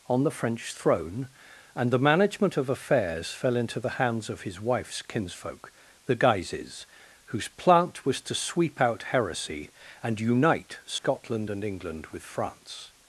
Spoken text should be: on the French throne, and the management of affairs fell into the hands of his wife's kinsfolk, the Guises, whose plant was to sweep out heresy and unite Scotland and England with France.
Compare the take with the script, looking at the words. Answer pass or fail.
pass